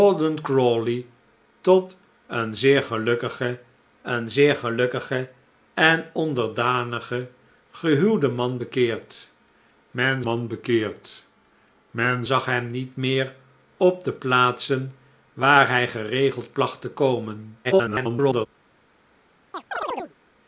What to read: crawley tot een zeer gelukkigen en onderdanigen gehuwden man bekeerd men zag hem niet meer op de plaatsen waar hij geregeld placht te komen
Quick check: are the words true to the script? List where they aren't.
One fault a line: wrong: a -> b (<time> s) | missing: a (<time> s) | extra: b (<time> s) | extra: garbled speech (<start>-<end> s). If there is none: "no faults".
extra: een zeer gelukkigen (4.0 s)
extra: man bekeerd men (10.2 s)
extra: garbled speech (17.6-18.5 s)